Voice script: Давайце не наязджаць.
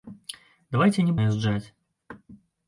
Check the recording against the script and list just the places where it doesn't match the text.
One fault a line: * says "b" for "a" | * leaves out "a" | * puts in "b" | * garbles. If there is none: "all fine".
all fine